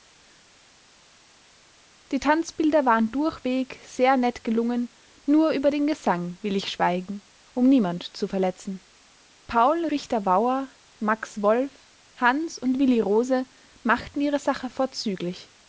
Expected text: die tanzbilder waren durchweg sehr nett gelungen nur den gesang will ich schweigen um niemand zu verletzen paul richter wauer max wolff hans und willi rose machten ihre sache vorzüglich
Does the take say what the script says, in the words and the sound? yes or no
no